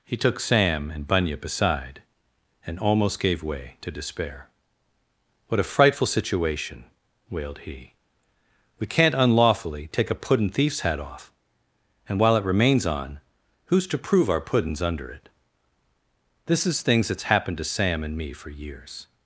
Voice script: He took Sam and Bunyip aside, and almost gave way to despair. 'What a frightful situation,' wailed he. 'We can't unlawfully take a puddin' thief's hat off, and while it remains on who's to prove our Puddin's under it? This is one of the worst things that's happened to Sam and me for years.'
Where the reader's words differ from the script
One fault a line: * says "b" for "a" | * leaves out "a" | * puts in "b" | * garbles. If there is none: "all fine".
* leaves out "one of the worst"